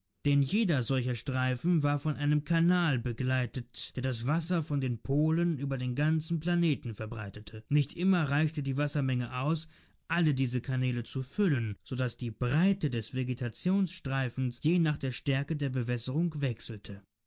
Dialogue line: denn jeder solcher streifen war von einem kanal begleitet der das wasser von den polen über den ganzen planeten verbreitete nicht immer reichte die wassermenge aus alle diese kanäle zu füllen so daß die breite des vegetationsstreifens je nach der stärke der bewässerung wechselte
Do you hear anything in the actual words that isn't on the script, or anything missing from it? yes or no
no